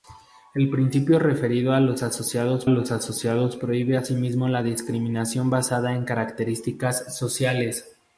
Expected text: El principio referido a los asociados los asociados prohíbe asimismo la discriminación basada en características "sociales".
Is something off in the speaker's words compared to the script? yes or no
no